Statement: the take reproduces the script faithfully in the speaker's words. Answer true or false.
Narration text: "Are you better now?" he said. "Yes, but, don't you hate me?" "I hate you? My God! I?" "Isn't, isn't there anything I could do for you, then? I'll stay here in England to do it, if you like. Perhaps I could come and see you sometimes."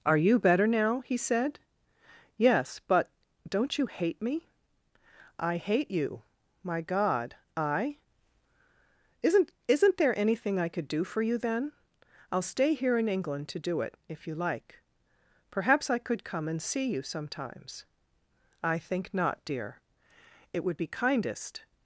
false